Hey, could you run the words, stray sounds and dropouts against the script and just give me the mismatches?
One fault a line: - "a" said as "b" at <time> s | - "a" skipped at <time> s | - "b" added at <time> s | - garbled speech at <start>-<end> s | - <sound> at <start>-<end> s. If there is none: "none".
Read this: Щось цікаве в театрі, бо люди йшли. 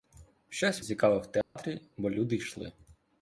- dropout at 1.4-1.6 s